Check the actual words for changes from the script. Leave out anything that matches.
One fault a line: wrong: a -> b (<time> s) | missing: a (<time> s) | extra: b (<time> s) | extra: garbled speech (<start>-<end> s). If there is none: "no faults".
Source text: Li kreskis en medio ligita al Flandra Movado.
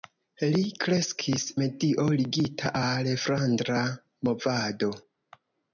missing: en (1.4 s)